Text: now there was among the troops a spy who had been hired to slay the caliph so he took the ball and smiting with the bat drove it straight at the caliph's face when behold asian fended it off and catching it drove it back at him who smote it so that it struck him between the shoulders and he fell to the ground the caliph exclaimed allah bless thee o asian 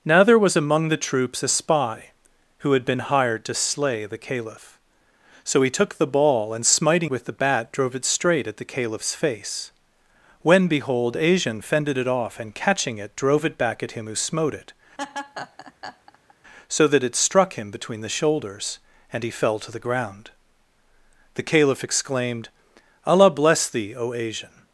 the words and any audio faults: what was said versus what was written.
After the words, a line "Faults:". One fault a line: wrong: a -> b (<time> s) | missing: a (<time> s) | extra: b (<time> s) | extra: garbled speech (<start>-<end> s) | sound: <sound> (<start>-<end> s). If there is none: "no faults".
now there was among the troops a spy who had been hired to slay the caliph so he took the ball and smiting with the bat drove it straight at the caliph's face when behold asian fended it off and catching it drove it back at him who smote it so that it struck him between the shoulders and he fell to the ground the caliph exclaimed allah bless thee o asian
Faults:
sound: laugh (15.0-16.3 s)